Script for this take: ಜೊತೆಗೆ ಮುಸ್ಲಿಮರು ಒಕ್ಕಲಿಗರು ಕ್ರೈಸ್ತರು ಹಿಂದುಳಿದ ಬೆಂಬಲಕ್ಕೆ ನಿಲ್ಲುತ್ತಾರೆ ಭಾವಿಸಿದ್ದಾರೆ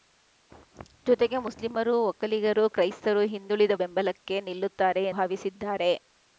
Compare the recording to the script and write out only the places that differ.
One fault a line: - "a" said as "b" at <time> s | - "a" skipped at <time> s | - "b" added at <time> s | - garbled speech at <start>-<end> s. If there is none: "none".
none